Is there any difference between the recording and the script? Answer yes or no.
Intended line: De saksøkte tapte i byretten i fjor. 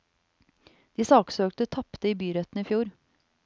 no